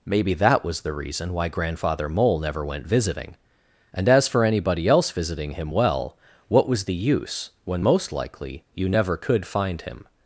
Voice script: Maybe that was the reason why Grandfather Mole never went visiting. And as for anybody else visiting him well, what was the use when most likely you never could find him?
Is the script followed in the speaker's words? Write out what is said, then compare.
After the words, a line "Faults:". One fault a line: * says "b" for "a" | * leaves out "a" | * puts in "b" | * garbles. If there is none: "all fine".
Maybe that was the reason why Grandfather Mole never went visiting. And as for anybody else visiting him well, what was the use when most likely you never could find him?
Faults:
all fine